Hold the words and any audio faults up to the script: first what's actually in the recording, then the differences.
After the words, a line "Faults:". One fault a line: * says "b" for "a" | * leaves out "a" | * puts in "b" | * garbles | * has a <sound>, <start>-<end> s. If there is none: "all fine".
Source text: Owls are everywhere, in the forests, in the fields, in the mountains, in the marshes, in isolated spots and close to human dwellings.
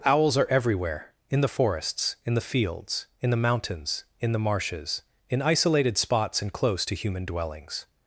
Owls are everywhere, in the forests, in the fields, in the mountains, in the marshes, in isolated spots and close to human dwellings.
Faults:
all fine